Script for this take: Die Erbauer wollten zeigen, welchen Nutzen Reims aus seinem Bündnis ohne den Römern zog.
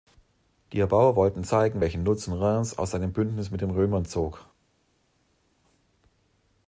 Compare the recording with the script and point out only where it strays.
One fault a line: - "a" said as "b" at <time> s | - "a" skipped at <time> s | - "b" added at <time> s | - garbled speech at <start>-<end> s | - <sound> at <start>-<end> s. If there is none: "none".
- "ohne" said as "mit" at 3.5 s